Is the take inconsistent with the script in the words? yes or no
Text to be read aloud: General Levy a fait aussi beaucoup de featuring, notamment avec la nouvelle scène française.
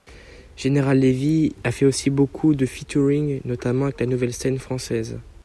no